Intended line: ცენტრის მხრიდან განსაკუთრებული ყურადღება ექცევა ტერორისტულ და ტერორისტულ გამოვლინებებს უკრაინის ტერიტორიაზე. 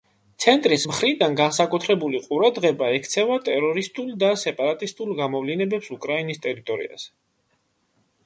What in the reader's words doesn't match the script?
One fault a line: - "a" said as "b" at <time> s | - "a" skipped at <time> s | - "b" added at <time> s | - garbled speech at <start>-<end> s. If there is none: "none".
- "ტერორისტულ" said as "სეპარატისტულ" at 4.4 s